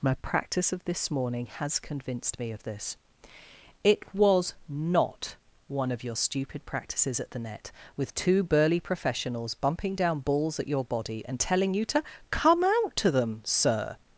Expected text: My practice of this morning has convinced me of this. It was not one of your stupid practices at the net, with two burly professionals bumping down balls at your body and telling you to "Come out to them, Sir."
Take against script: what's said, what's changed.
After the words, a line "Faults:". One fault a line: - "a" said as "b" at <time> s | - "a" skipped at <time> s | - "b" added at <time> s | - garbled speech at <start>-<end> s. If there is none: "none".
My practice of this morning has convinced me of this. It was not one of your stupid practices at the net, with two burly professionals bumping down balls at your body and telling you to "Come out to them, Sir."
Faults:
none